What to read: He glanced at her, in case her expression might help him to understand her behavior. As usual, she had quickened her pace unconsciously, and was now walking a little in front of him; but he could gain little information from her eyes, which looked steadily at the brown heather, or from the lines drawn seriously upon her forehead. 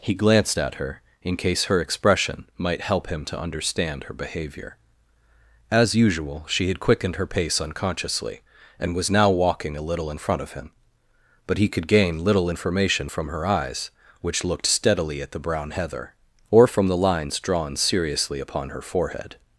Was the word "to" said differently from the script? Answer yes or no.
no